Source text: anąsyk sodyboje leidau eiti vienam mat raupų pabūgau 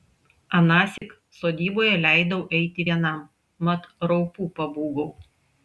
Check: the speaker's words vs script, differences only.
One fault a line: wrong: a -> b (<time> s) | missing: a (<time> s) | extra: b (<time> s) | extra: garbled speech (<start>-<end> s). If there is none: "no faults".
no faults